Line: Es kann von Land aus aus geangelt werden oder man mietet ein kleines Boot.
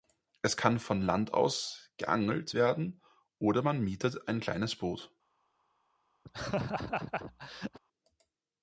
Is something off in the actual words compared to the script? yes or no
yes